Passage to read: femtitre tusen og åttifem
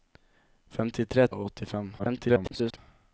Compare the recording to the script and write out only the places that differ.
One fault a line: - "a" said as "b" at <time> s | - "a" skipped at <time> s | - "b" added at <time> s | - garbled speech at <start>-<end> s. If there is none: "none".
- "tusen" skipped at 1.3 s
- garbled speech at 2.0-2.8 s